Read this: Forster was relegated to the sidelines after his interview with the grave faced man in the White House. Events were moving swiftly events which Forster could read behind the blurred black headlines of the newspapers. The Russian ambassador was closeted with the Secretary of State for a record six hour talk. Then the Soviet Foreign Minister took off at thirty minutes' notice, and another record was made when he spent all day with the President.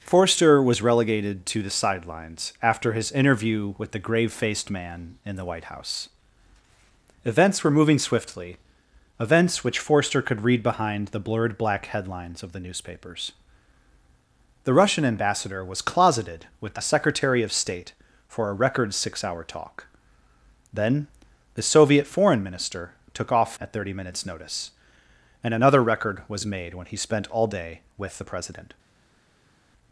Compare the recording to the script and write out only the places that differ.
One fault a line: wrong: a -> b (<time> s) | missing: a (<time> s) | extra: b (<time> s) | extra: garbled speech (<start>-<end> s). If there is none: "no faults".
no faults